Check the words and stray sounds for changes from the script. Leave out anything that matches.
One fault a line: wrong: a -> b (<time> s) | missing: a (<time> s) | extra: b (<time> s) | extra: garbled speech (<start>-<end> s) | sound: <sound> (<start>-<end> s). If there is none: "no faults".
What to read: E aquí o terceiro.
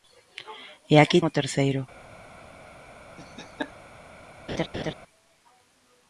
sound: laugh (3.2-3.7 s)
sound: laugh (4.5-4.9 s)